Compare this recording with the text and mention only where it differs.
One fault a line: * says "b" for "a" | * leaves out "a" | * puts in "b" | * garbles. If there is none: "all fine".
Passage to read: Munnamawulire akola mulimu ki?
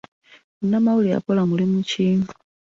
all fine